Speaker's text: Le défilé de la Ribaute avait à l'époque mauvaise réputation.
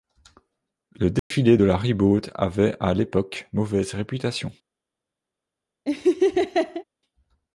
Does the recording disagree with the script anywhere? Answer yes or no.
no